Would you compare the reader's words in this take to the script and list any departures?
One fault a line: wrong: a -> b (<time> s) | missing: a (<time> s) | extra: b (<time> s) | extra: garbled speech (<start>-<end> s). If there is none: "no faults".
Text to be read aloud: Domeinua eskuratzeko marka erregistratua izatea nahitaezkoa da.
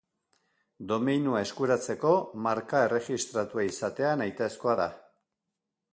no faults